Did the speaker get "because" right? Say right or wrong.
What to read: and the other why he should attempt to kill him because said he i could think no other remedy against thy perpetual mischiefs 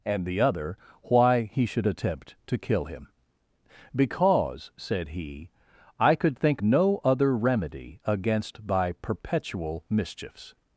right